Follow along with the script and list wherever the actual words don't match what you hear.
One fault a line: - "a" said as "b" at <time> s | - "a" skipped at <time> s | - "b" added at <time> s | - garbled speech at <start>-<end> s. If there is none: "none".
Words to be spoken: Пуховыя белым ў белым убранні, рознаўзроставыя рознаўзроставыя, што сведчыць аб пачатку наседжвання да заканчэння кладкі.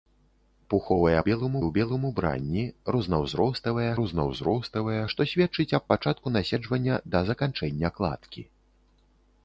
none